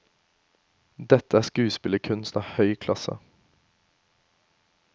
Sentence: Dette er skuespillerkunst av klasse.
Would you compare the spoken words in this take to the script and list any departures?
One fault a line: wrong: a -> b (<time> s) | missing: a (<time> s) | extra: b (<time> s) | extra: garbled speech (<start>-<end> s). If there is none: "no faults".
extra: høy (2.6 s)